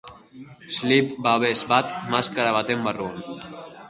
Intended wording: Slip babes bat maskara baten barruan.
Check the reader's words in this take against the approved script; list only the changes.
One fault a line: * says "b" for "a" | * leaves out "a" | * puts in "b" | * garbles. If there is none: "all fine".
all fine